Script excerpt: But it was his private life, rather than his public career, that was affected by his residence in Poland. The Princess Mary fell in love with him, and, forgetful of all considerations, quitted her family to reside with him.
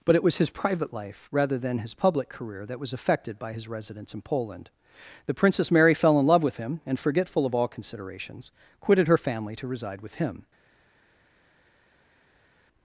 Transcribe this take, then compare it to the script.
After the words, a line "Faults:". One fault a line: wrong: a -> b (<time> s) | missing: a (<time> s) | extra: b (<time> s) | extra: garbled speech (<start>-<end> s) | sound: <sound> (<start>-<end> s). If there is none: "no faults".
But it was his private life, rather than his public career, that was affected by his residence in Poland. The Princess Mary fell in love with him, and, forgetful of all considerations, quitted her family to reside with him.
Faults:
no faults